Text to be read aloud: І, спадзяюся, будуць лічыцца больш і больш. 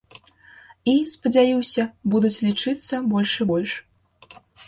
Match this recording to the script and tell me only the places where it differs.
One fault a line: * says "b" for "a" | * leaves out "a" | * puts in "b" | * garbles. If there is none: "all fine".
all fine